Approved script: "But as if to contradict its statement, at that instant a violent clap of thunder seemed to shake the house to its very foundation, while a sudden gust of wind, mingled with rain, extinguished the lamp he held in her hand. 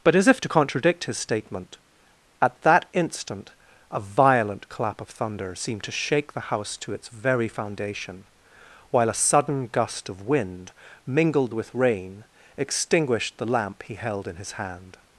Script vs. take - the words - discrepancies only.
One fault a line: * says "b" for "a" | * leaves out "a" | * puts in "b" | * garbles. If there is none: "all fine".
* says "his" for "its"
* says "his" for "her"